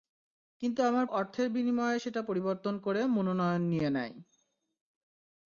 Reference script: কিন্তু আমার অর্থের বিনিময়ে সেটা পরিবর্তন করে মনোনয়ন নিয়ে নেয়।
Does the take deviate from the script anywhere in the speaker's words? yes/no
no